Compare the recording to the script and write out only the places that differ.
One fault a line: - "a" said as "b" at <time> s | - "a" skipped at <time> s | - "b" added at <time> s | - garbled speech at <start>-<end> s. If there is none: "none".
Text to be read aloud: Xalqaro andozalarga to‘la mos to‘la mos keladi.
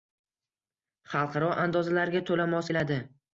- "to‘la mos" skipped at 2.7 s